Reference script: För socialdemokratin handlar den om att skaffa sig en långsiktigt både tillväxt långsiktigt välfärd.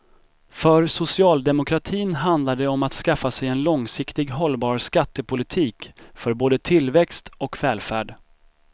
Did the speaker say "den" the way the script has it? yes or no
no